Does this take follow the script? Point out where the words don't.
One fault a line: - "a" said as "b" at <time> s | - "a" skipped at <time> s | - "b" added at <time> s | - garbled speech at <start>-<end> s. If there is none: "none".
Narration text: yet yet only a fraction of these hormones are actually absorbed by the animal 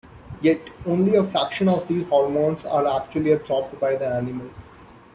- "yet" skipped at 0.7 s